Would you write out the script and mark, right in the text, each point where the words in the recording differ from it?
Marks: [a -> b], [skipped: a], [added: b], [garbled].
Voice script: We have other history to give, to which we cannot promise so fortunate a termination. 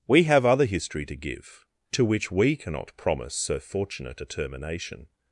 We have other history to give, to which we cannot promise so fortunate a termination.